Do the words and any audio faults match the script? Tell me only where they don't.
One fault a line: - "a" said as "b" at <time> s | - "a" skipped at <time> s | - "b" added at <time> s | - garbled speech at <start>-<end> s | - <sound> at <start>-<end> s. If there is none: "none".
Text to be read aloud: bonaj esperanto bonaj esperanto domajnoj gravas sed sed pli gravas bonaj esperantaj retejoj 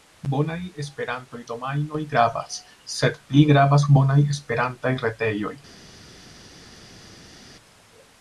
- "bonaj esperanto" skipped at 1.4 s
- "sed" skipped at 3.2 s